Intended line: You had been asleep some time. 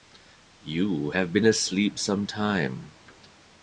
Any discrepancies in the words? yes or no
yes